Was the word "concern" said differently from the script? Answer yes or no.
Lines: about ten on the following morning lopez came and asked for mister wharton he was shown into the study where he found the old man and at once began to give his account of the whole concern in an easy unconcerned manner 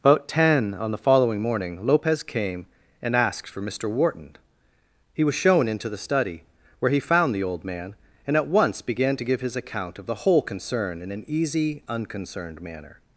no